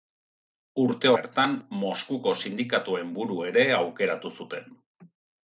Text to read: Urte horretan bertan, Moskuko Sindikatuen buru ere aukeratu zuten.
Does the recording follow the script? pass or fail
fail